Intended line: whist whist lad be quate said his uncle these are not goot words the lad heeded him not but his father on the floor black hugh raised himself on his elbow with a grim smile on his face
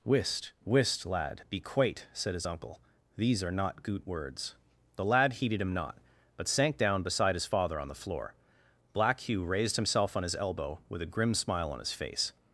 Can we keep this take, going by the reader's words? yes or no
no